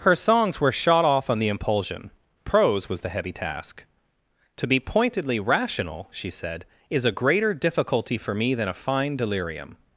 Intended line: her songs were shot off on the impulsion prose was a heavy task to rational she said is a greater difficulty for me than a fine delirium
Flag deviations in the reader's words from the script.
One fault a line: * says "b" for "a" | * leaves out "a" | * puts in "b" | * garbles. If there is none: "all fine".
* says "the" for "a"
* puts in "be pointedly"